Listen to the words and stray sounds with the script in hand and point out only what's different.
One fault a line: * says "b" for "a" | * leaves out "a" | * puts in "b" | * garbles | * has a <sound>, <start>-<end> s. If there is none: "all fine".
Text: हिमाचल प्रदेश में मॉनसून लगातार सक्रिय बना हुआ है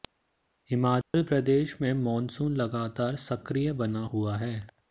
* has a dropout, 1.0-1.1 s